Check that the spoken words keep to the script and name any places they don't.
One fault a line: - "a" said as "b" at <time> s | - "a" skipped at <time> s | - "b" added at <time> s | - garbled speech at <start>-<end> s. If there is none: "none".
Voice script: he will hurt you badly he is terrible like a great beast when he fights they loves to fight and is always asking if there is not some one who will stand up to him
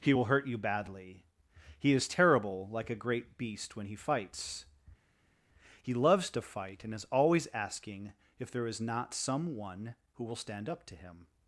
- "they" said as "he" at 5.8 s